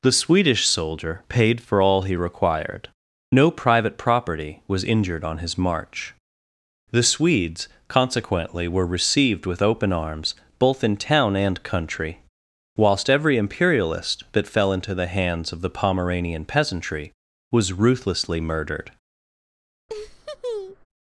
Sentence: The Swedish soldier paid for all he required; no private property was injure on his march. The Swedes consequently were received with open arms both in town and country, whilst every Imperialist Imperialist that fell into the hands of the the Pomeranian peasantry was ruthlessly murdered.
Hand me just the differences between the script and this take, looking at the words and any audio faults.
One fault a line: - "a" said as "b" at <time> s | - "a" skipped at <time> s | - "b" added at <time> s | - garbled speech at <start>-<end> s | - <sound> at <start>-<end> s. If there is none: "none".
- "injure" said as "injured" at 4.8 s
- "Imperialist" skipped at 14.2 s
- "the" skipped at 15.7 s
- laugh at 19.9-20.9 s